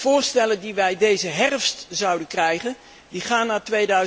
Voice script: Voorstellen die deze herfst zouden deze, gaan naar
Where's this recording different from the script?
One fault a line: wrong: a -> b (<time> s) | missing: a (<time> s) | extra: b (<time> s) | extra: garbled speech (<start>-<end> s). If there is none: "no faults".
extra: wij (0.7 s)
wrong: deze -> krijgen (2.3 s)